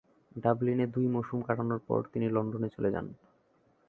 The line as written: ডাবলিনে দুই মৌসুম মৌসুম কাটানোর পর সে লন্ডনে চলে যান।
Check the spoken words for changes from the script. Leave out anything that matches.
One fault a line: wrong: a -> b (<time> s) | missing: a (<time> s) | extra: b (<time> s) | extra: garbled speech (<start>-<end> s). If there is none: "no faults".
missing: মৌসুম (1.4 s)
wrong: সে -> তিনি (2.1 s)